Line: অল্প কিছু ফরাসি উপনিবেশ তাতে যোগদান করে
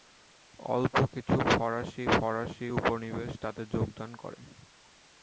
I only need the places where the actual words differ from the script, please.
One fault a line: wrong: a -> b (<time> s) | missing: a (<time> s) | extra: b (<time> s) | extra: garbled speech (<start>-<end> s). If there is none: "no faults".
extra: ফরাসি (2.1 s)